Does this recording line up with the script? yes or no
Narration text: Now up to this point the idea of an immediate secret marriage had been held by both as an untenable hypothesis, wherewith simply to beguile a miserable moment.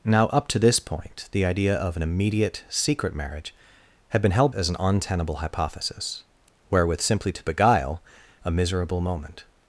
no